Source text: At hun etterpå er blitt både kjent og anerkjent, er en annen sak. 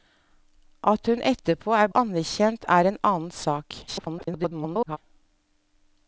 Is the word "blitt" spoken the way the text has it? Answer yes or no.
no